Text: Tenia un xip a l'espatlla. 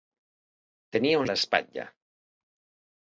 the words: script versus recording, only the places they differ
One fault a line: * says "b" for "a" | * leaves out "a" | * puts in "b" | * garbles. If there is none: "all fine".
* leaves out "xip"